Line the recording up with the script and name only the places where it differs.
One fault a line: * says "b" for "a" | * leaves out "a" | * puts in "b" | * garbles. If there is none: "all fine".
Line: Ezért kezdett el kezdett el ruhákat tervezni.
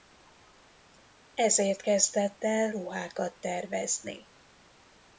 * leaves out "kezdett el"